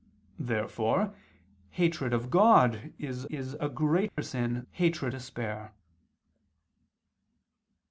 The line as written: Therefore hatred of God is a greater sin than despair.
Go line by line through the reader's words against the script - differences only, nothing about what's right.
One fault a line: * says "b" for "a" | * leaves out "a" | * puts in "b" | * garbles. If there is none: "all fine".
* puts in "is"
* says "hatred" for "than"